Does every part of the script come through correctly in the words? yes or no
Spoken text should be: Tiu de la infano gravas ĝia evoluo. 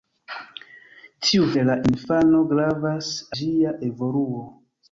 yes